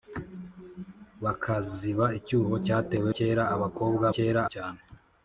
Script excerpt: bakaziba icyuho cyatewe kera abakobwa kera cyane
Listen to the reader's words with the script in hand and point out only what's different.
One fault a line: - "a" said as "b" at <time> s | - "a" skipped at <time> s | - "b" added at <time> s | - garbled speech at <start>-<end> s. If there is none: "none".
none